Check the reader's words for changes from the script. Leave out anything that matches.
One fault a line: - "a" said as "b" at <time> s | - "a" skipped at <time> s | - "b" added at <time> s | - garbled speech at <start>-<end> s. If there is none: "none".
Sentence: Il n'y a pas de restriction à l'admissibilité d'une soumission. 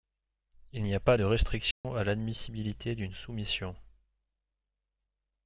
none